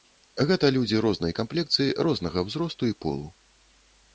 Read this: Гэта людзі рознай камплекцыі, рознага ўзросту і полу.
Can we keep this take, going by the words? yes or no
yes